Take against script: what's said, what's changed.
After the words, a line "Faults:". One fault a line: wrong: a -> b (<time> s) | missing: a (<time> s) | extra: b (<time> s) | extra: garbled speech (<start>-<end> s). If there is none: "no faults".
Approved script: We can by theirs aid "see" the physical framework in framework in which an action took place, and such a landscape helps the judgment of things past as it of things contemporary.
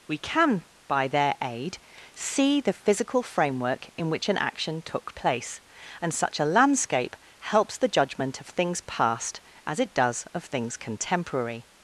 We can by their aid "see" the physical framework in which an action took place, and such a landscape helps the judgment of things past as it does of things contemporary.
Faults:
wrong: theirs -> their (1.1 s)
missing: framework in (4.1 s)
extra: does (9.9 s)